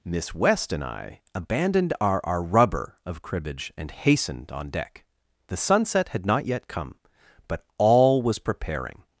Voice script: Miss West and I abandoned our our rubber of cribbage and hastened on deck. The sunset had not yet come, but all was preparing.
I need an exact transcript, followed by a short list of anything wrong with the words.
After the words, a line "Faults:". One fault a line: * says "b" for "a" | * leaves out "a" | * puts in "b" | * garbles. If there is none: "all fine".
Miss West and I abandoned our our rubber of cribbage and hastened on deck. The sunset had not yet come, but all was preparing.
Faults:
all fine